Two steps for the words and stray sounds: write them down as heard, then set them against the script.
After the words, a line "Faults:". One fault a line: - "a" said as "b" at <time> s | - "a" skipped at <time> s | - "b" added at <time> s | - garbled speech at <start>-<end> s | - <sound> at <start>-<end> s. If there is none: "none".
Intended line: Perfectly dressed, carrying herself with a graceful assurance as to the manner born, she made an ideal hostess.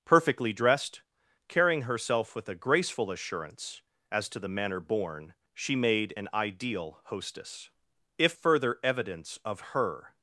Perfectly dressed, carrying herself with a graceful assurance as to the manner born, she made an ideal hostess. If further evidence of her
Faults:
- "If further evidence of her" added at 8.2 s